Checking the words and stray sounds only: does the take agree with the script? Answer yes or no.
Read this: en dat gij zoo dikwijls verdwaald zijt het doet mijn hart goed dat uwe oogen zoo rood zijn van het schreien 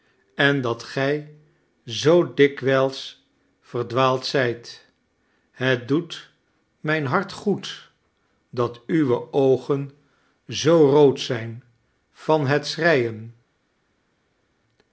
yes